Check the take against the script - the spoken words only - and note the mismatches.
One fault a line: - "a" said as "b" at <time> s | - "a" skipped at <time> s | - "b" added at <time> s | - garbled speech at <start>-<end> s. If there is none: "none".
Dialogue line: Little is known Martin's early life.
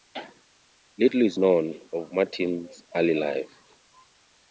- "of" added at 1.9 s